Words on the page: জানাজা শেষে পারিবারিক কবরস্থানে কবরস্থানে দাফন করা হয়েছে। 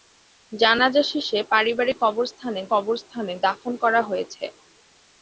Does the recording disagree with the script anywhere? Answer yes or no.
no